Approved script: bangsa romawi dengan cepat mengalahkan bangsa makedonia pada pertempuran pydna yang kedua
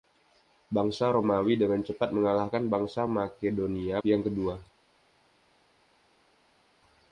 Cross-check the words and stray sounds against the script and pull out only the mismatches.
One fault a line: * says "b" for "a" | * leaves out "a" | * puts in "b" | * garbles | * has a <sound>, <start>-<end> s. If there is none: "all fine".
* leaves out "pada pertempuran pydna"